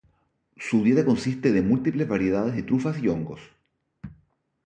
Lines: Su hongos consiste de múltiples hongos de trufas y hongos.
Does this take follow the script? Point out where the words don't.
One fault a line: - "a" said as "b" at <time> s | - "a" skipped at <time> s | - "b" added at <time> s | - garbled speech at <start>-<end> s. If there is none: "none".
- "hongos" said as "dieta" at 0.8 s
- "hongos" said as "variedades" at 2.1 s